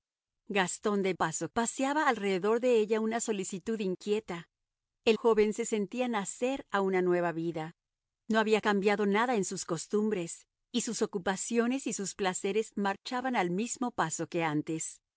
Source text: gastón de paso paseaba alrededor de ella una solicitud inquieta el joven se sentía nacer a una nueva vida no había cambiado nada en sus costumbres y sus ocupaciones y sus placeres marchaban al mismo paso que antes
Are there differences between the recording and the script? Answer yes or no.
no